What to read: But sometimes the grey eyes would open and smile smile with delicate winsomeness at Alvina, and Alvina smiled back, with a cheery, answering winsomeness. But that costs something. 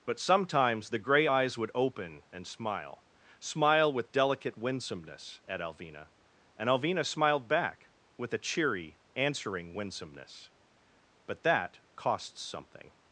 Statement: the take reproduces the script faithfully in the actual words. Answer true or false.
true